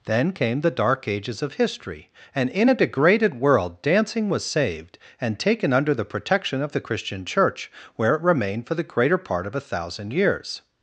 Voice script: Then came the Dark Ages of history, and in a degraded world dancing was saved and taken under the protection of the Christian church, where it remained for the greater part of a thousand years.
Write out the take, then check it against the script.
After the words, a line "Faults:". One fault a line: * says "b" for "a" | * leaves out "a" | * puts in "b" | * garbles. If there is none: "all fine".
Then came the Dark Ages of history, and in a degraded world dancing was saved and taken under the protection of the Christian church, where it remained for the greater part of a thousand years.
Faults:
all fine